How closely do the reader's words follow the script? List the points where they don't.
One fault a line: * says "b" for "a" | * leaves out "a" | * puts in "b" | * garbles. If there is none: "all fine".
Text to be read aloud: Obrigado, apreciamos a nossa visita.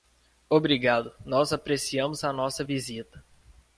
* puts in "nós"